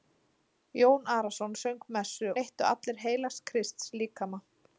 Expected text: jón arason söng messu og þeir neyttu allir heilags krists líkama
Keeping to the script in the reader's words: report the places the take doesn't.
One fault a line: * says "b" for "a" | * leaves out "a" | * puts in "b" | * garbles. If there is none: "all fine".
* leaves out "og þeir"